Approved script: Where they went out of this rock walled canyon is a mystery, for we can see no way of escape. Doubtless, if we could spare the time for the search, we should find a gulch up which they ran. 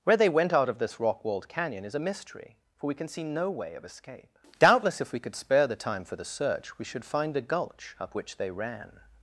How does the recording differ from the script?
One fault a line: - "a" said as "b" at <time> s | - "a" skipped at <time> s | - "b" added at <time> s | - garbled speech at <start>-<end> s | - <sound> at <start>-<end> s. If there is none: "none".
none